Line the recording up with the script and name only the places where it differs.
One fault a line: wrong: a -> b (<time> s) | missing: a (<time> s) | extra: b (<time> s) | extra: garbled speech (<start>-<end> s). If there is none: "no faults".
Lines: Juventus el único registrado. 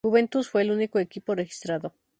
extra: fue (0.5 s)
extra: equipo (1.0 s)